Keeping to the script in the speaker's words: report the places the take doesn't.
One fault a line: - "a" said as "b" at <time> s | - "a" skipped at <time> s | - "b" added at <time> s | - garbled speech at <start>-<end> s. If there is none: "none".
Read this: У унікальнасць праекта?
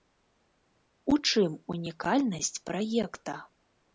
- "чым" added at 1.3 s